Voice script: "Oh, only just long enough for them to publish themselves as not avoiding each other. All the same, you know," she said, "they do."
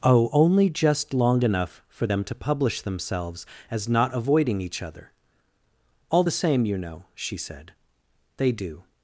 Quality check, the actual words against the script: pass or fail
pass